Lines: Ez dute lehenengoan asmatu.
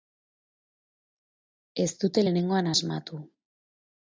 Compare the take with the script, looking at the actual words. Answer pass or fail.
pass